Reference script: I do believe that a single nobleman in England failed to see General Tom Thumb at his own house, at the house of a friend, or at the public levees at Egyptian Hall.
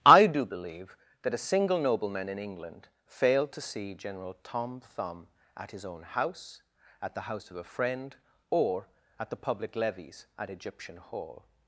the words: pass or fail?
pass